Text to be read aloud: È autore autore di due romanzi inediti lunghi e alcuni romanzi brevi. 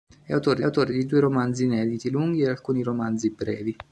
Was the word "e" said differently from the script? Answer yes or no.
no